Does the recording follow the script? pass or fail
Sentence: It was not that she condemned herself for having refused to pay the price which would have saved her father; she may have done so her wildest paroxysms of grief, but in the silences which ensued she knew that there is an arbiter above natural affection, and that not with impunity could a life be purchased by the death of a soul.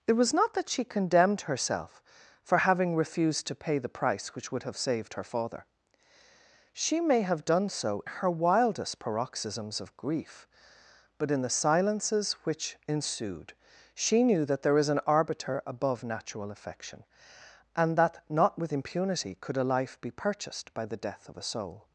pass